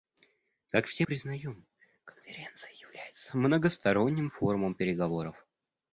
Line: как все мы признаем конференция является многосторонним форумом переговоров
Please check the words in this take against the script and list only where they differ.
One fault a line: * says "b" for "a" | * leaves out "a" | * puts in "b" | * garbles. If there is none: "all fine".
* leaves out "мы"